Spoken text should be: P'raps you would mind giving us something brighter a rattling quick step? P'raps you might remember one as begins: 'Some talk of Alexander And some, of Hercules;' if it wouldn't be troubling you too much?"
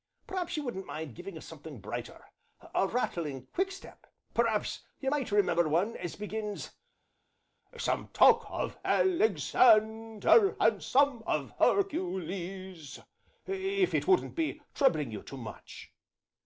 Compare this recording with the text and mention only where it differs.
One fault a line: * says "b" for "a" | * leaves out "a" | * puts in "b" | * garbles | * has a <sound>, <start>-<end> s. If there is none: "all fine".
* says "wouldn't" for "would"